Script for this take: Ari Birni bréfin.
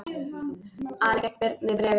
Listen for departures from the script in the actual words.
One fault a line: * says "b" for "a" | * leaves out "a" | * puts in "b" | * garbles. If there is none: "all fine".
* puts in "fékk"